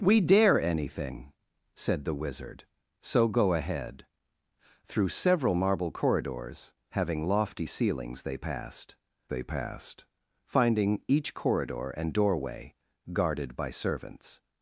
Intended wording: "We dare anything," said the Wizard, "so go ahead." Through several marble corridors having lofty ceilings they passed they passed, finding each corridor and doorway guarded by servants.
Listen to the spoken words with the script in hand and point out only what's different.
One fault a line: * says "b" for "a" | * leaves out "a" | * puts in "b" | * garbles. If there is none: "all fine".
all fine